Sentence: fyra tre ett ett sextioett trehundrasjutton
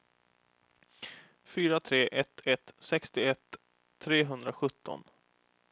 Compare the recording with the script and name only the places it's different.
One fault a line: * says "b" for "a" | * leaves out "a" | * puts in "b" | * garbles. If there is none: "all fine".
all fine